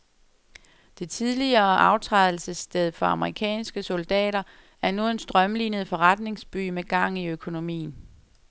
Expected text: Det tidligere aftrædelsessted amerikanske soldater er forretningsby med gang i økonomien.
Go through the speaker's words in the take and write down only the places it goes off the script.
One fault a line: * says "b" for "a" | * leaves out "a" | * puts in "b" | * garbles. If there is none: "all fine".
* puts in "for"
* puts in "nu en strømlinet"